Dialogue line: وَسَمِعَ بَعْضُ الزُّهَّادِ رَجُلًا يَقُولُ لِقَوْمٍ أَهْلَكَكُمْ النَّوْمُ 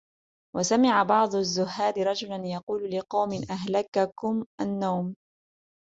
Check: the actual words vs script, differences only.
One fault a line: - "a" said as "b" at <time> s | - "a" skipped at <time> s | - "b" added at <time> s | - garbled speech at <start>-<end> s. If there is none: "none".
none